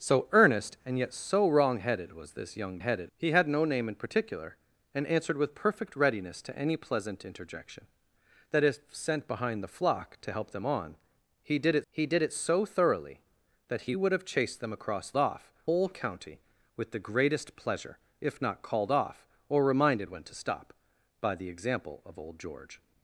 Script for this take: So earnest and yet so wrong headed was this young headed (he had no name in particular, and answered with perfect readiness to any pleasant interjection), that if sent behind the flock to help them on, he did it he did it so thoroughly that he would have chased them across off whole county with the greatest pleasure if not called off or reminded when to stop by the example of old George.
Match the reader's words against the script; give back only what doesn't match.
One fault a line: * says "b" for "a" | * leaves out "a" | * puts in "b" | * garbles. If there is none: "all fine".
all fine